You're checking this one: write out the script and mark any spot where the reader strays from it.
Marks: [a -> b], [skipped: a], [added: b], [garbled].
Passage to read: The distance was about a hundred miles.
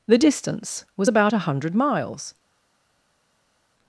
The distance was about a hundred miles.